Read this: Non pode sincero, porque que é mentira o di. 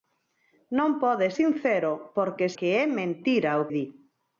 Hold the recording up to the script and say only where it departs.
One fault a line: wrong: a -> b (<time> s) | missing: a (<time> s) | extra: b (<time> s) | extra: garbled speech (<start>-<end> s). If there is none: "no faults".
no faults